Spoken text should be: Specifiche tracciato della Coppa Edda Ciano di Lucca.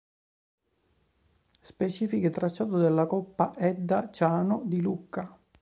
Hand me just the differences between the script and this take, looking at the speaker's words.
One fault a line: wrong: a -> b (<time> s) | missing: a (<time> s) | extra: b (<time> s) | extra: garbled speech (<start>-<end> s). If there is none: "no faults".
no faults